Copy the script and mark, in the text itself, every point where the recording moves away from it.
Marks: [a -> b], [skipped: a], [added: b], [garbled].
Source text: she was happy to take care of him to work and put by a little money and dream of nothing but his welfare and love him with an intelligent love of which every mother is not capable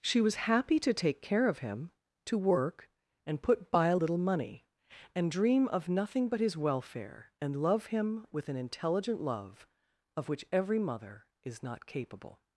she was happy to take care of him to work and put by a little money and dream of nothing but his welfare and love him with an intelligent love of which every mother is not capable